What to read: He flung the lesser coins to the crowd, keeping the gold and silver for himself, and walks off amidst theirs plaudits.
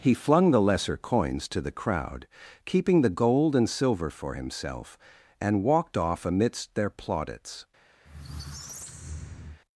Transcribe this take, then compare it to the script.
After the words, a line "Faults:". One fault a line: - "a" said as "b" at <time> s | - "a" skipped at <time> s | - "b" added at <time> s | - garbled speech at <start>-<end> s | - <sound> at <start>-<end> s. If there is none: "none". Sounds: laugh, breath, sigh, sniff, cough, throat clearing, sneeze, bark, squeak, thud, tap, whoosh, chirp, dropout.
He flung the lesser coins to the crowd, keeping the gold and silver for himself, and walked off amidst their plaudits.
Faults:
- "walks" said as "walked" at 5.6 s
- "theirs" said as "their" at 6.7 s
- squeak at 8.0-9.6 s